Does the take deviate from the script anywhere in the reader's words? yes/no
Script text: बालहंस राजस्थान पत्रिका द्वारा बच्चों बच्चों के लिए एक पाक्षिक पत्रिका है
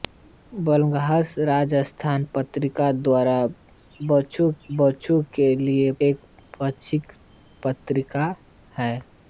no